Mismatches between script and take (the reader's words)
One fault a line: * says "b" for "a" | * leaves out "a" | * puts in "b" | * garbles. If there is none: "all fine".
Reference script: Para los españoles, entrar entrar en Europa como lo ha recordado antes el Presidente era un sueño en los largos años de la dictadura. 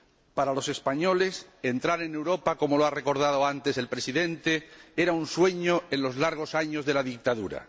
* leaves out "entrar"